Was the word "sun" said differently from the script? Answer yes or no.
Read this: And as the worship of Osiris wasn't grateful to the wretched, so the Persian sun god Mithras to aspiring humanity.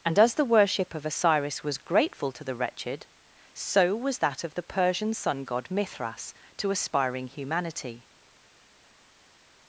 no